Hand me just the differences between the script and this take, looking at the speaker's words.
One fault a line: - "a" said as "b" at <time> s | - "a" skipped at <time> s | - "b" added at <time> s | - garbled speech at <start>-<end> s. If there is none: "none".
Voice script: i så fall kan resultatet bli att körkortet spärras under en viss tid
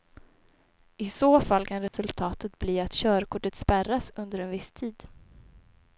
none